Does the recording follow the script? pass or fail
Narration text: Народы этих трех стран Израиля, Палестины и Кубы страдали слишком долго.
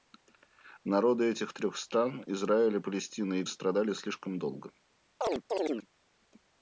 fail